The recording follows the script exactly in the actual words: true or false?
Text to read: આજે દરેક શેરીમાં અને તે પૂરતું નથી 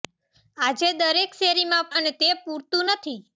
true